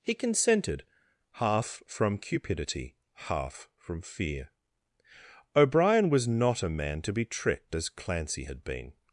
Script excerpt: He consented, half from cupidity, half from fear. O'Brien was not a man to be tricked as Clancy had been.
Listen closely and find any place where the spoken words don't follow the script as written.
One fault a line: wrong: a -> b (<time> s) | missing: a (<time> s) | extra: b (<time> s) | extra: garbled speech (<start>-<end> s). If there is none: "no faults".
no faults